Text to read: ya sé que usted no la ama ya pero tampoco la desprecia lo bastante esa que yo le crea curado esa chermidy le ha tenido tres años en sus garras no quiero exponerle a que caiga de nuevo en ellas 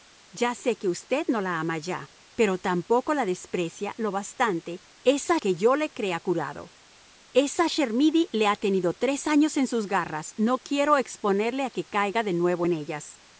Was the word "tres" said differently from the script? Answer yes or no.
no